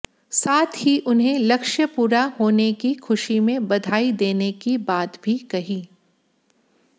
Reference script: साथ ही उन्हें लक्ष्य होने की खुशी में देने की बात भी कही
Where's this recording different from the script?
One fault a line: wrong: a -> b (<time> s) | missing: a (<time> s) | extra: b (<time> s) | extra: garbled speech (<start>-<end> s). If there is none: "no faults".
extra: पूरा (1.9 s)
extra: बधाई (3.7 s)